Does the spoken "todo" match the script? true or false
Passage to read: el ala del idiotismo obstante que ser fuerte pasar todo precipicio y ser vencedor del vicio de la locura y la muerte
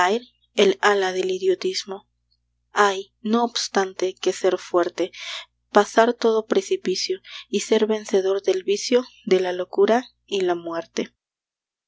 true